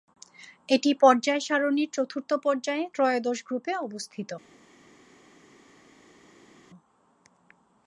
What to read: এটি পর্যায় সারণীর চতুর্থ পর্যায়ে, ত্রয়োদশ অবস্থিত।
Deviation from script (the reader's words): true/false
true